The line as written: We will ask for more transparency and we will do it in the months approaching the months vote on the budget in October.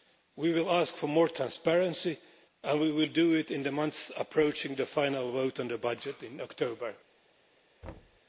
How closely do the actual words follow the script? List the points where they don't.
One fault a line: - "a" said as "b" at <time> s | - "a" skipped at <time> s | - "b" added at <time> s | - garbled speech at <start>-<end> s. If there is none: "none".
- "months" said as "final" at 4.8 s